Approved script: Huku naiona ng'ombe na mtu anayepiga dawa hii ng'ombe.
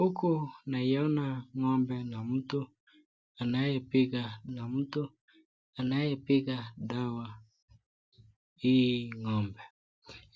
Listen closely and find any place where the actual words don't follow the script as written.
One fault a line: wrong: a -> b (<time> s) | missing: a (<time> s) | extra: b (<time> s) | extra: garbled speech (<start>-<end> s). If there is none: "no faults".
extra: na mtu anayepiga (4.6 s)